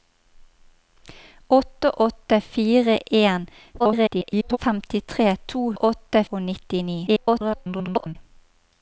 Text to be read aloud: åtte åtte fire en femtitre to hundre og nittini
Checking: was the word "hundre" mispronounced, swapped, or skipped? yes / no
yes